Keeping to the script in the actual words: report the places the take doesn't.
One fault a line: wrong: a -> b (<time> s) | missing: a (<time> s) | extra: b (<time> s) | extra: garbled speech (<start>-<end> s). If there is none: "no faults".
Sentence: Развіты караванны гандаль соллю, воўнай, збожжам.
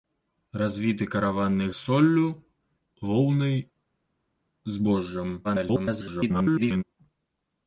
missing: гандаль (1.7 s)
extra: garbled speech (5.4-6.8 s)